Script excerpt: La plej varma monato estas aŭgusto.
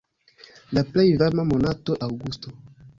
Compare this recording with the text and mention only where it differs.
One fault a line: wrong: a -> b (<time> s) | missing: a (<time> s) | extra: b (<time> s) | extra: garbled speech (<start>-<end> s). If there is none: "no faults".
missing: estas (2.0 s)